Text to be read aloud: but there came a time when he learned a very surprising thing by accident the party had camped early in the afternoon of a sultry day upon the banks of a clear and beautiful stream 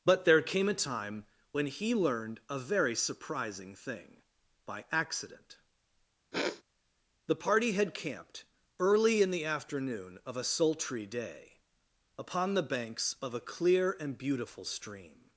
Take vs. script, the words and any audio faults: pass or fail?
fail